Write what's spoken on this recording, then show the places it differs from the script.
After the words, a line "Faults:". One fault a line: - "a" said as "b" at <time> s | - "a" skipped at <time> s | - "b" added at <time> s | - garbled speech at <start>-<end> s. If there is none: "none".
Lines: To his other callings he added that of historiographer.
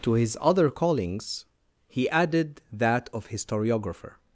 To his other callings he added that of historiographer.
Faults:
none